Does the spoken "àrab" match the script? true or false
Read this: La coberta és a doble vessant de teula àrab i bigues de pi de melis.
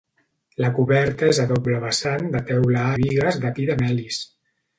false